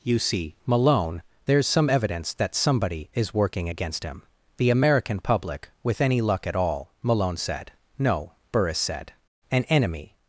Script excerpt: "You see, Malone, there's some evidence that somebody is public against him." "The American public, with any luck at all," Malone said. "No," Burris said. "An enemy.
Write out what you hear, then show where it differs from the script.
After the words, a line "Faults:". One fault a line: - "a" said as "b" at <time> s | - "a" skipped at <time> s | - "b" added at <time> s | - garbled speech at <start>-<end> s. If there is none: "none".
"You see, Malone, there's some evidence that somebody is working against him." "The American public, with any luck at all," Malone said. "No," Burris said. "An enemy.
Faults:
- "public" said as "working" at 3.3 s